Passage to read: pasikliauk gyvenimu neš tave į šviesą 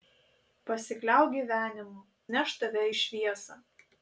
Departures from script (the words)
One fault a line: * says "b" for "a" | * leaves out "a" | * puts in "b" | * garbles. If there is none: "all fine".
all fine